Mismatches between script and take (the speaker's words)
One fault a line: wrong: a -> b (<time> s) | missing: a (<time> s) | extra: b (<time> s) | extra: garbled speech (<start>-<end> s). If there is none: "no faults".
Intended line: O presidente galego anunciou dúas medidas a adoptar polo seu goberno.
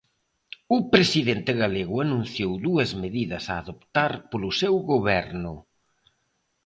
no faults